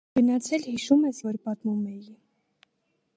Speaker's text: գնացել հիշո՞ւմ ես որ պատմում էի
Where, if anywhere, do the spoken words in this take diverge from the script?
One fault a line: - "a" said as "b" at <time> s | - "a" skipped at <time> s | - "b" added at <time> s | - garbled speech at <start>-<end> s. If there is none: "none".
none